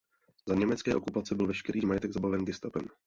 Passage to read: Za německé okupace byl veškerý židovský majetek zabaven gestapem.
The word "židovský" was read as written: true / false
false